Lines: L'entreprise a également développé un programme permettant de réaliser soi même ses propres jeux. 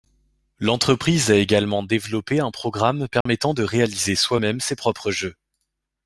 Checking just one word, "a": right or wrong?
right